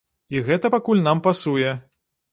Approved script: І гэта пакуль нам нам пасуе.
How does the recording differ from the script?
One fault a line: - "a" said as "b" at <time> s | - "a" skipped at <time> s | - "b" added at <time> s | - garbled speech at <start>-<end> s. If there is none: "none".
- "нам" skipped at 1.2 s